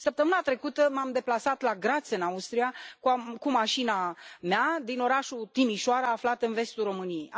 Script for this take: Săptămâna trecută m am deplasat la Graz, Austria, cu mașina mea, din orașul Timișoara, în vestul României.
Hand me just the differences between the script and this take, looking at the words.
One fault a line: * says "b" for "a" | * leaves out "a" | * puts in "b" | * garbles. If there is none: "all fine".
* puts in "în"
* puts in "aflat"